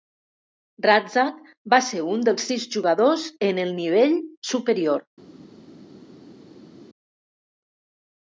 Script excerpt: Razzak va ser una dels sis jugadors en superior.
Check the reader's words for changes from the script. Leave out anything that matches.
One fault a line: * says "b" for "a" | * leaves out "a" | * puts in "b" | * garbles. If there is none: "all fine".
* says "un" for "una"
* puts in "el nivell"